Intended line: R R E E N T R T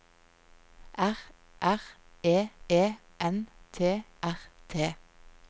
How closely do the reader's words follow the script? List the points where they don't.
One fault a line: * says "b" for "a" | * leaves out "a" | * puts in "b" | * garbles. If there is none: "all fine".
all fine